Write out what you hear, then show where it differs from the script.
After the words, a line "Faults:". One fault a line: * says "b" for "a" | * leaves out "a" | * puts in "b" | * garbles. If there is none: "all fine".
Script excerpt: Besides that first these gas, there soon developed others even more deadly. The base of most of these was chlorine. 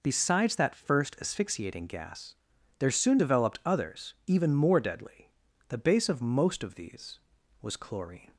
Besides that first asphyxiating gas, there soon developed others even more deadly. The base of most of these was chlorine.
Faults:
* says "asphyxiating" for "these"